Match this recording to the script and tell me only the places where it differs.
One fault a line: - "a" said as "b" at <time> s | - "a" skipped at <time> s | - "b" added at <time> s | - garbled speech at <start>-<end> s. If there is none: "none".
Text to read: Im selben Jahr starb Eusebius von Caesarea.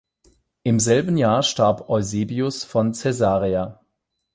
none